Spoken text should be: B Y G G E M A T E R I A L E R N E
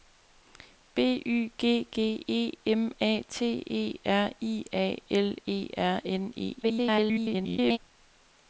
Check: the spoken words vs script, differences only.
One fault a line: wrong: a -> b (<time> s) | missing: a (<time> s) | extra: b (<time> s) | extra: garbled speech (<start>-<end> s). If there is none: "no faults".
extra: garbled speech (6.6-7.8 s)